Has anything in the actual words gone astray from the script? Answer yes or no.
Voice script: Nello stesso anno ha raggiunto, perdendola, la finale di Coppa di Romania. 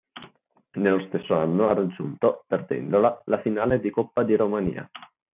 no